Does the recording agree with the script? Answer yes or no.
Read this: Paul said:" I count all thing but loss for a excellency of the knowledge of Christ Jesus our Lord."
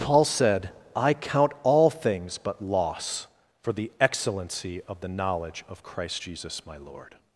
no